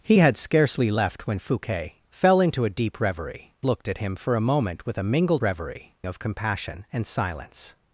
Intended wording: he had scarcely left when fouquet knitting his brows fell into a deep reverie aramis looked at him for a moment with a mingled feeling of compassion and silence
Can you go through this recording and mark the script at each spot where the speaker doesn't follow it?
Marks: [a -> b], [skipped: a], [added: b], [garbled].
he had scarcely left when fouquet [skipped: knitting his brows] fell into a deep reverie [skipped: aramis] looked at him for a moment with a mingled [feeling -> reverie] of compassion and silence